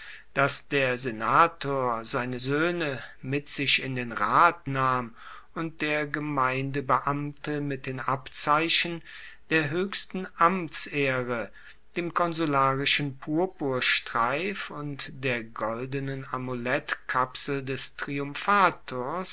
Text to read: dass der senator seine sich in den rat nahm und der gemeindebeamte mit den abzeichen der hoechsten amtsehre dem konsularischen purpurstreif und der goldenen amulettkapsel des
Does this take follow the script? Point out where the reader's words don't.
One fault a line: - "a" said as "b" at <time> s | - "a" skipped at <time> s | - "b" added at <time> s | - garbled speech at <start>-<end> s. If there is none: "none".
- "soehne mit" added at 2.4 s